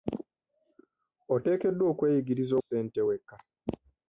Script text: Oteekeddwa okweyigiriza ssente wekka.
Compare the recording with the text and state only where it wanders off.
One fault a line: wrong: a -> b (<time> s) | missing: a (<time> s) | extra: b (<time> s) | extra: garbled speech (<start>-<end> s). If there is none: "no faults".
no faults